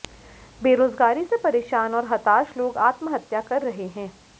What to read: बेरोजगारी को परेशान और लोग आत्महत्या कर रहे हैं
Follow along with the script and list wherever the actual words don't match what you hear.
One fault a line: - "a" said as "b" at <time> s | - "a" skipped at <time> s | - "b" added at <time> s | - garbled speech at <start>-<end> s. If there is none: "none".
- "को" said as "से" at 1.2 s
- "हताश" added at 2.1 s